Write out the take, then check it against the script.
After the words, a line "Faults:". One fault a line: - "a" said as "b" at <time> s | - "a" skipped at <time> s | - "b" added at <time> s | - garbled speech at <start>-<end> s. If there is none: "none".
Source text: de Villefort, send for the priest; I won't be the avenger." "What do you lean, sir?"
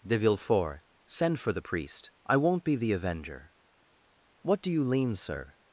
de Villefort, send for the priest; I won't be the avenger." "What do you lean, sir?"
Faults:
none